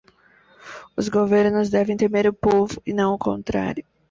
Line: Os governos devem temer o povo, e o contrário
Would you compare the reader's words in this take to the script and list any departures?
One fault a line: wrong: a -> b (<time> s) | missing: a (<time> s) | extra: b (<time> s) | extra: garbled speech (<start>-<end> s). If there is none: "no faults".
extra: não (2.9 s)